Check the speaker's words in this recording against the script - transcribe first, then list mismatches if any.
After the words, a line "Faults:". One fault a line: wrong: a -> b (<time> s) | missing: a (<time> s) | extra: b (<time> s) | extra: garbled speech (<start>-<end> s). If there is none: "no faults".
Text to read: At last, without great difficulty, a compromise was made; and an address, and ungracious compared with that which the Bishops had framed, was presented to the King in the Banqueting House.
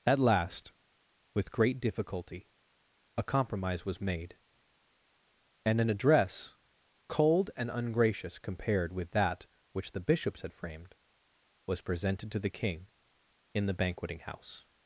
At last, with great difficulty, a compromise was made; and an address, cold and ungracious compared with that which the Bishops had framed, was presented to the King in the Banqueting House.
Faults:
wrong: without -> with (1.4 s)
extra: cold (7.1 s)